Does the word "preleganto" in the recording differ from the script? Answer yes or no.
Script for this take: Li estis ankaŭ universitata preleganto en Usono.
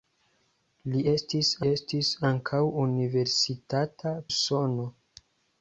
yes